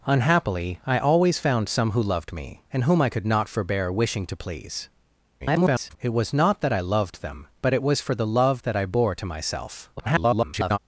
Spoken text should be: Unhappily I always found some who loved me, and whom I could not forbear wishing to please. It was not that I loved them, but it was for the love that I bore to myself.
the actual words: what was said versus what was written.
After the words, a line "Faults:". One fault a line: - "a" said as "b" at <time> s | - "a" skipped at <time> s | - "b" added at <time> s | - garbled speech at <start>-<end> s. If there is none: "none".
Unhappily I always found some who loved me, and whom I could not forbear wishing to please. [garbled] It was not that I loved them, but it was for the love that I bore to myself. [garbled]
Faults:
- garbled speech at 5.4-6.0 s
- garbled speech at 10.0-10.8 s